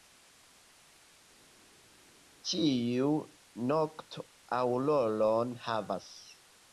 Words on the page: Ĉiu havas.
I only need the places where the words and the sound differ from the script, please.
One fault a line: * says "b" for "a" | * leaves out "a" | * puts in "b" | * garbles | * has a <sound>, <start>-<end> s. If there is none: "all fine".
* puts in "nokto aŭroron"